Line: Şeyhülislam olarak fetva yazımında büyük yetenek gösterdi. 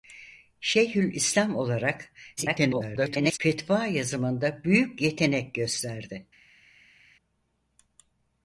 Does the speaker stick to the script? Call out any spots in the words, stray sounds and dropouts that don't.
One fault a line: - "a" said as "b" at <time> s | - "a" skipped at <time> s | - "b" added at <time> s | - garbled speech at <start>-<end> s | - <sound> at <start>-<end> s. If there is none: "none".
- garbled speech at 2.4-3.4 s